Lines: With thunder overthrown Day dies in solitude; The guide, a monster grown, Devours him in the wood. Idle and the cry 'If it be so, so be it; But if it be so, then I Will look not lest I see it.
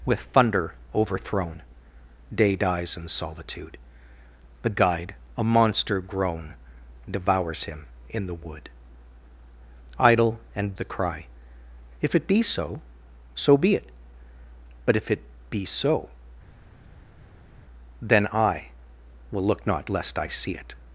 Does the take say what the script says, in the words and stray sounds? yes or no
yes